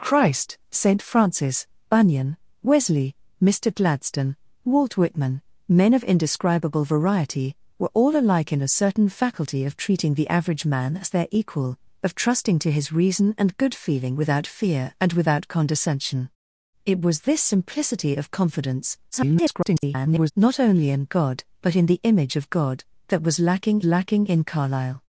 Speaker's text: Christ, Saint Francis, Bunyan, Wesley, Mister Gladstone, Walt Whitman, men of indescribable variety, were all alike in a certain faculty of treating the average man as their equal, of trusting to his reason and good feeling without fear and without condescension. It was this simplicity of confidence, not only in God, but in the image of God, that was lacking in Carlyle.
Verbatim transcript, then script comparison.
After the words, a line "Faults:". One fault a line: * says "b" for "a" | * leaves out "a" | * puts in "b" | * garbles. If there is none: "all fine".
Christ, Saint Francis, Bunyan, Wesley, Mister Gladstone, Walt Whitman, men of indescribable variety, were all alike in a certain faculty of treating the average man as their equal, of trusting to his reason and good feeling without fear and without condescension. It was this simplicity of confidence, [garbled] not only in God, but in the image of God, that was lacking lacking in Carlyle.
Faults:
* garbles
* puts in "lacking"